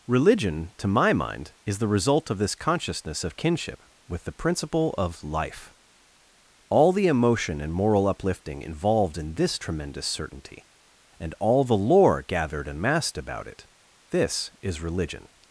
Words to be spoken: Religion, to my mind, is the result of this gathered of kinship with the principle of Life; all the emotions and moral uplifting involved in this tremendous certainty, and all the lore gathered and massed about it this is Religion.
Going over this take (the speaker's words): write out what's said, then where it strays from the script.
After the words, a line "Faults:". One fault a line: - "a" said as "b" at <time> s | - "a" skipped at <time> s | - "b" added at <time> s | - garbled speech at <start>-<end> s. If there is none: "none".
Religion, to my mind, is the result of this consciousness of kinship with the principle of Life; all the emotion and moral uplifting involved in this tremendous certainty, and all the lore gathered and massed about it this is Religion.
Faults:
- "gathered" said as "consciousness" at 2.5 s
- "emotions" said as "emotion" at 7.1 s